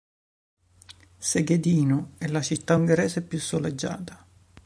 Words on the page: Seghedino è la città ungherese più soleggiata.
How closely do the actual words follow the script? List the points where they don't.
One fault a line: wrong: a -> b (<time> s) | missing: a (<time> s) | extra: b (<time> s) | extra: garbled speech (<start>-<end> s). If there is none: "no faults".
no faults